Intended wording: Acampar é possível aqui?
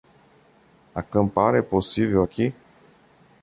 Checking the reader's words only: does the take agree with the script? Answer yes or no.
yes